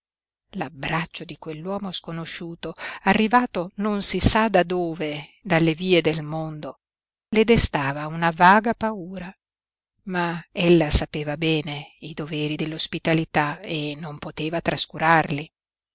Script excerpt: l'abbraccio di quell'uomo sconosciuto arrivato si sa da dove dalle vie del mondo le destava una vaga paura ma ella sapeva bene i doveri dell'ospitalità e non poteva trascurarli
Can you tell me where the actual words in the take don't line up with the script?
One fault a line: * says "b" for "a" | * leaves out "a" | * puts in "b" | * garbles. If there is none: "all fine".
* puts in "non"